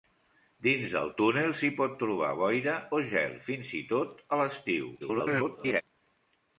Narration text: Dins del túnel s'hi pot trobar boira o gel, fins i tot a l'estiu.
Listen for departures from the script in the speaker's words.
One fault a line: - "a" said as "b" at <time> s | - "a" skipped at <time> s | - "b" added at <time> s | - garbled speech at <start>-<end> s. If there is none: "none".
- garbled speech at 5.0-5.8 s